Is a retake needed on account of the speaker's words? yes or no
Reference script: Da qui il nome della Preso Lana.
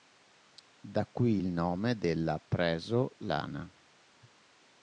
no